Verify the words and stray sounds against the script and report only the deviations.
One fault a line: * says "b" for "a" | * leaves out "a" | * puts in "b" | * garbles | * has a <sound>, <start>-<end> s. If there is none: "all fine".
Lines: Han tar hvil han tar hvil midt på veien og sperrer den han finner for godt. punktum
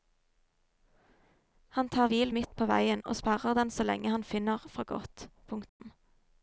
* leaves out "han tar hvil"
* puts in "så lenge"
* has a dropout, 5.7-5.8 s